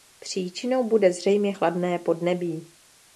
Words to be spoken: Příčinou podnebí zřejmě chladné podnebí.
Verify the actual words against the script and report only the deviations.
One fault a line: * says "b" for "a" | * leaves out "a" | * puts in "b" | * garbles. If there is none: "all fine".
* says "bude" for "podnebí"